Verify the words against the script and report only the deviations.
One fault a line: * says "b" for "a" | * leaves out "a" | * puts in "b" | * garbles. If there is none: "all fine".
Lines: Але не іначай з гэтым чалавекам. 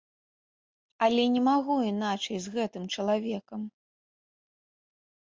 * puts in "магу"